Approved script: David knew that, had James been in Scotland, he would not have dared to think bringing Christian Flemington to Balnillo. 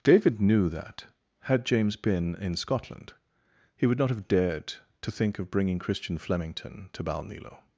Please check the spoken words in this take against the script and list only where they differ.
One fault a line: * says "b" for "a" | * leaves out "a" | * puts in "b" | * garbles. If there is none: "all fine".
* puts in "of"